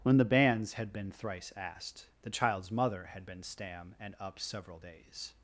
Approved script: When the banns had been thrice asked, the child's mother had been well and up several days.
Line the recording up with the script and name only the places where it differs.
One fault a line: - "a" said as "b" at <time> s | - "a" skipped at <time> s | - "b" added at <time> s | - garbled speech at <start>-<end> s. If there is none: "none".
- "well" said as "stam" at 3.4 s